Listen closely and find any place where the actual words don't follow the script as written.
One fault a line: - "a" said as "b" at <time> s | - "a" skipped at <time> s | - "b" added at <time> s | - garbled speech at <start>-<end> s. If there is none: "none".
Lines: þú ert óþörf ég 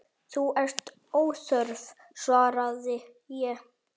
- "svaraði" added at 2.3 s